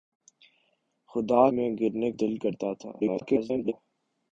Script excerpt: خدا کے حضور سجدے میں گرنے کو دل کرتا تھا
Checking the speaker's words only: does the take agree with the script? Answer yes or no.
no